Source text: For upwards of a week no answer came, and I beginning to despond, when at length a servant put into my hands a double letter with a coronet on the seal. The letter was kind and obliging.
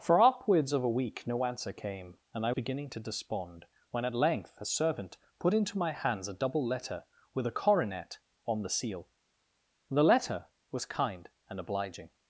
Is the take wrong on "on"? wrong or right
right